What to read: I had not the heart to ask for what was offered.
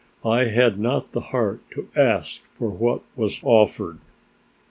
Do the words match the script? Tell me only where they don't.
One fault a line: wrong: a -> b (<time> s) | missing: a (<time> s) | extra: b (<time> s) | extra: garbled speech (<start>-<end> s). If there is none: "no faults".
no faults